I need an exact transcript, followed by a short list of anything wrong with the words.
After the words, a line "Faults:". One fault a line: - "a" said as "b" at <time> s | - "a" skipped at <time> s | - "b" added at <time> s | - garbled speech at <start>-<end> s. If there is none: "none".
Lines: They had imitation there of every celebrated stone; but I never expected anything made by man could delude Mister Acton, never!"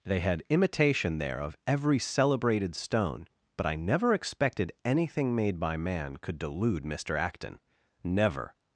They had imitation there of every celebrated stone; but I never expected anything made by man could delude Mister Acton, never!"
Faults:
none